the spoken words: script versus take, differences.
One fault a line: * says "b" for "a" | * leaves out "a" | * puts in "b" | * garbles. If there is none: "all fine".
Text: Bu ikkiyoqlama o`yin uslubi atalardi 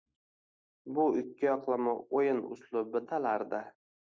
all fine